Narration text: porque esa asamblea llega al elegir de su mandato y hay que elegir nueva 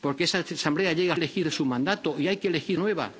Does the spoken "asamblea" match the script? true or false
true